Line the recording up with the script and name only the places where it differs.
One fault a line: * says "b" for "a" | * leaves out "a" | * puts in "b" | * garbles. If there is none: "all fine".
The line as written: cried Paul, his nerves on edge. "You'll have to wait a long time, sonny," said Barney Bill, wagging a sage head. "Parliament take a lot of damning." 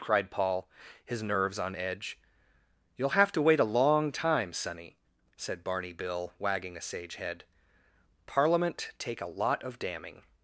all fine